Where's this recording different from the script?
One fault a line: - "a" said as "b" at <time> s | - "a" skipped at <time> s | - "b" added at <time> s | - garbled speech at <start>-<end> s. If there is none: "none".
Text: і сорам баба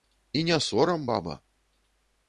- "не" added at 0.4 s